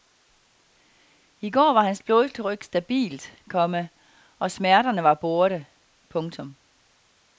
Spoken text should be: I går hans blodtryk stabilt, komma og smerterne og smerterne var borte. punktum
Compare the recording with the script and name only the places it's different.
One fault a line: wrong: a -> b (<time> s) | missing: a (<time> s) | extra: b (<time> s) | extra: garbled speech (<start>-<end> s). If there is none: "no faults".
extra: var (1.7 s)
missing: og smerterne (5.0 s)